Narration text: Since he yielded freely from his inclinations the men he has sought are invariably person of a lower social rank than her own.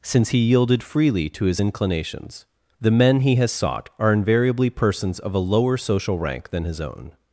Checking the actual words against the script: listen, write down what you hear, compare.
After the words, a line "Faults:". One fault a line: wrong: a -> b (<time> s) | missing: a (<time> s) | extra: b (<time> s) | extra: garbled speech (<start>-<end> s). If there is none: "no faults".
Since he yielded freely to his inclinations the men he has sought are invariably persons of a lower social rank than his own.
Faults:
wrong: from -> to (1.3 s)
wrong: person -> persons (4.7 s)
wrong: her -> his (6.6 s)